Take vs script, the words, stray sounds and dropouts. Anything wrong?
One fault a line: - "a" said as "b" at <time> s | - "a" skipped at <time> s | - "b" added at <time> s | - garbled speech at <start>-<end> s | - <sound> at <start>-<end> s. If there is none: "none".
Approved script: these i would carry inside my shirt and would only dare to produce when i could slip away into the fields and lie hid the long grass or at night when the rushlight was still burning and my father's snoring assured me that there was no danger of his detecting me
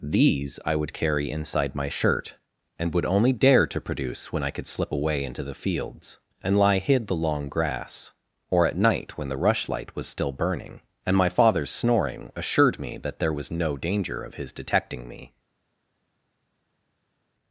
none